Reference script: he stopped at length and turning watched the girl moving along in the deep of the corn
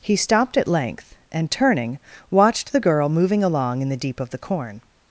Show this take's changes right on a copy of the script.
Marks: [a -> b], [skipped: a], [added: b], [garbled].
he stopped at length and turning watched the girl moving along in the deep of the corn